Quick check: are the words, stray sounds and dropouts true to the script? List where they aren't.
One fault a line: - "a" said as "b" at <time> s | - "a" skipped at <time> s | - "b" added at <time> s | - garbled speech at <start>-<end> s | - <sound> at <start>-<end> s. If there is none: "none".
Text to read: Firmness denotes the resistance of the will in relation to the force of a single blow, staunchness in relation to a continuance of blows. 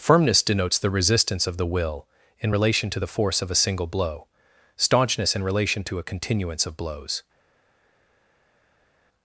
none